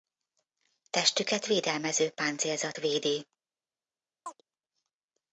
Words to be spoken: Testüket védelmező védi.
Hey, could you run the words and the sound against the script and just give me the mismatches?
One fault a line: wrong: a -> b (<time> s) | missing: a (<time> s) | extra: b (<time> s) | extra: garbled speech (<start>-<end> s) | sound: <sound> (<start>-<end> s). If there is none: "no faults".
extra: páncélzat (2.1 s)
sound: chirp (4.3-4.4 s)